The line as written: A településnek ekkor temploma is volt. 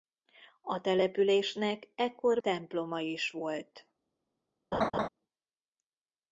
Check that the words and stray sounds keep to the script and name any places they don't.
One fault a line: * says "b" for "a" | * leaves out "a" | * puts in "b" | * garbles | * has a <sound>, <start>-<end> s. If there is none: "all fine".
* has a laugh, 4.7-5.1 s